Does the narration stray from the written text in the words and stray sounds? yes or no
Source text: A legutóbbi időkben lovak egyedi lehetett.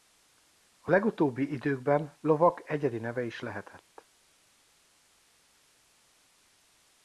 yes